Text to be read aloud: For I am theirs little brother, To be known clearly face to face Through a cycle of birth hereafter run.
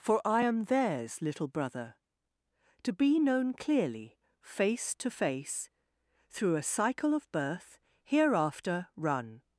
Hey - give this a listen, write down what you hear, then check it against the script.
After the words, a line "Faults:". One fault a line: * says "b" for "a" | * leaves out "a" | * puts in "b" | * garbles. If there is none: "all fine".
For I am theirs little brother, To be known clearly face to face Through a cycle of birth hereafter run.
Faults:
all fine